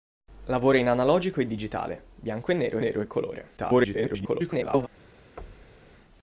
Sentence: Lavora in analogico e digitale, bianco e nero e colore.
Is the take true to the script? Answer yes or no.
no